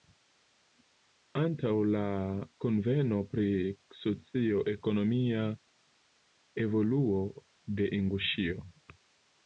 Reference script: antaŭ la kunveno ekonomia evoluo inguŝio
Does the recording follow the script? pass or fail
fail